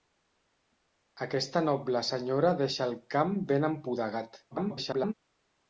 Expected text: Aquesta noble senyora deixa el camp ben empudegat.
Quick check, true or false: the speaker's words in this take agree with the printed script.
false